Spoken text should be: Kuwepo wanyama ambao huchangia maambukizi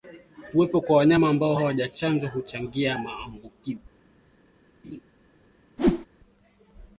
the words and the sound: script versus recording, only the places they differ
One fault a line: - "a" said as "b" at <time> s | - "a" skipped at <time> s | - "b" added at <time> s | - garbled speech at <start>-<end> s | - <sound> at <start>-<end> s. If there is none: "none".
- "kwa" added at 0.8 s
- "hawajachanjwa" added at 1.5 s
- laugh at 4.8-5.0 s
- whoosh at 5.8-6.1 s